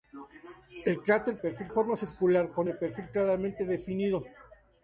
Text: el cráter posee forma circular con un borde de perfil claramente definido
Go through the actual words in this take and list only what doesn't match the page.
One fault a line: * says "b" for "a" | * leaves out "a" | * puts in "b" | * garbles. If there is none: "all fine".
* says "perfil" for "posee"
* leaves out "un borde"